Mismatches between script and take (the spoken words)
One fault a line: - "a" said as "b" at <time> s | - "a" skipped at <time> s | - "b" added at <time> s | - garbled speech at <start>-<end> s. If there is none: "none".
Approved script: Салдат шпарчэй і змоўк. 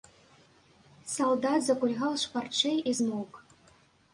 - "закульгаў" added at 1.7 s